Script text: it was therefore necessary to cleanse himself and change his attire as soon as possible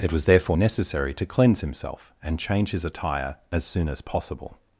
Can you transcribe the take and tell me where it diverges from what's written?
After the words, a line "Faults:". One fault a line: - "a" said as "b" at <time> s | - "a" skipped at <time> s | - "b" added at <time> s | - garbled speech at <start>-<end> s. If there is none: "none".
it was therefore necessary to cleanse himself and change his attire as soon as possible
Faults:
none